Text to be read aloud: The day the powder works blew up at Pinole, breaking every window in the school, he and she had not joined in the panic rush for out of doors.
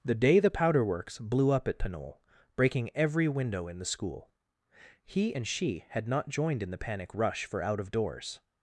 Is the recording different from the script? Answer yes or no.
no